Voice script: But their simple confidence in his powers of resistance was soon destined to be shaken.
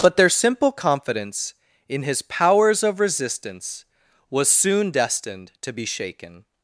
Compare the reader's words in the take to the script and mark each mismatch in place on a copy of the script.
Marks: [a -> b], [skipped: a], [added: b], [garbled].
But their simple confidence in his powers of resistance was soon destined to be shaken.